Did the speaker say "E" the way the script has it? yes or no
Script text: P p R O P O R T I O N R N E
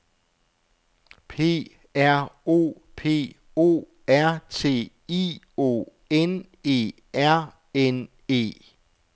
yes